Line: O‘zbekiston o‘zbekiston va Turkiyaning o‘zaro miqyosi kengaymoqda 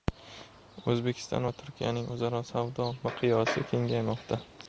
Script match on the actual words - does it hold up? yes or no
no